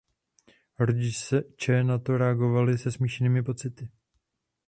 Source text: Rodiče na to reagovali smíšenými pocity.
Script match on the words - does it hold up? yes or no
no